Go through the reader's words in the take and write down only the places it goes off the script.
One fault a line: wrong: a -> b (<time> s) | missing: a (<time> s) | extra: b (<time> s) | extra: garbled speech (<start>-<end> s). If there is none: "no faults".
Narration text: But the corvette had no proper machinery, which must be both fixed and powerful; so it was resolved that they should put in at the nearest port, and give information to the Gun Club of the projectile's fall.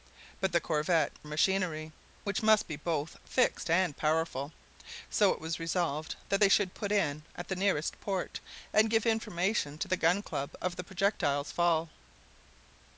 missing: had no proper (1.1 s)